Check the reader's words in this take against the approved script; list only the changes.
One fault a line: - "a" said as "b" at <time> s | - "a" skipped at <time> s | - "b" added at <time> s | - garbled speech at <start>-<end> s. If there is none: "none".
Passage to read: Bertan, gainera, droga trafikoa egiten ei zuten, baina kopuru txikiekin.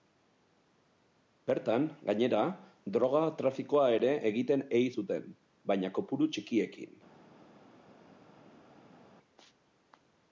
- "ere" added at 3.9 s